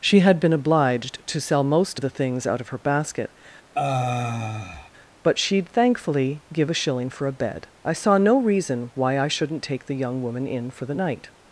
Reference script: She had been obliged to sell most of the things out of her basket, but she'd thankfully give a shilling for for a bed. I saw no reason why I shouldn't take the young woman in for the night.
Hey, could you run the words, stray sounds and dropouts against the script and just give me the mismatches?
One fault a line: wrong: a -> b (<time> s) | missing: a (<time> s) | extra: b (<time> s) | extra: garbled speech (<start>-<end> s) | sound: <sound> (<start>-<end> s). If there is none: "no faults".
sound: sigh (3.7-4.9 s)
missing: for (7.3 s)